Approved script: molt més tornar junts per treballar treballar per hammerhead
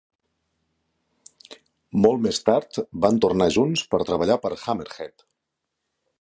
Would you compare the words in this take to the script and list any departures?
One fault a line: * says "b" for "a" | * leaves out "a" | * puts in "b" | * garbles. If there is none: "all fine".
* puts in "tard van"
* leaves out "treballar"